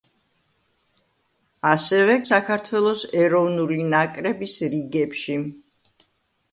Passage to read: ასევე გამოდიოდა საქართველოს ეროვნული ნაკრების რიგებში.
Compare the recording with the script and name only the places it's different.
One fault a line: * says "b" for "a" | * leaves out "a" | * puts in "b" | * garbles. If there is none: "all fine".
* leaves out "გამოდიოდა"